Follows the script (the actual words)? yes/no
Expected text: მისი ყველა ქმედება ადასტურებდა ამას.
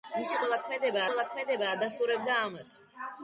no